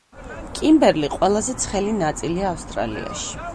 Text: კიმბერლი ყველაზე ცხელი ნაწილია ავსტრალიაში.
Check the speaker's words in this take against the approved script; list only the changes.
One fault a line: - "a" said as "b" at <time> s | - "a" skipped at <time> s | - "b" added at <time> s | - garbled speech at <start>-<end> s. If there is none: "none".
none